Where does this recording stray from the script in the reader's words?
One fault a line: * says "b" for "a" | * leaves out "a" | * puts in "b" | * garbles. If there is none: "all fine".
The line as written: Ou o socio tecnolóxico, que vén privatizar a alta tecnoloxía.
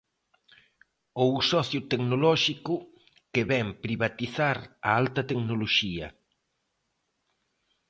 all fine